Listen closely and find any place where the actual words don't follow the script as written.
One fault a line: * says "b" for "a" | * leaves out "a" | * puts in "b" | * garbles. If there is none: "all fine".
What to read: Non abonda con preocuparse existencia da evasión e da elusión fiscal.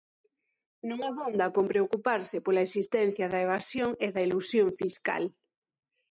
* puts in "pola"